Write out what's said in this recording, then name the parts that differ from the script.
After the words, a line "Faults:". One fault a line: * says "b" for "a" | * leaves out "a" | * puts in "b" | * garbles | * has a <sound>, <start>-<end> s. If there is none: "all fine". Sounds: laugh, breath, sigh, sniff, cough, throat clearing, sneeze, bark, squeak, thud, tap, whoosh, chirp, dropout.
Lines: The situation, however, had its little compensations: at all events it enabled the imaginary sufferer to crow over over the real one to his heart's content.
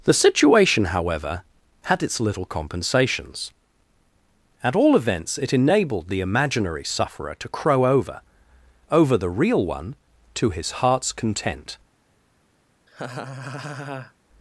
The situation, however, had its little compensations: at all events it enabled the imaginary sufferer to crow over over the real one to his heart's content.
Faults:
* has a laugh, 12.9-14.1 s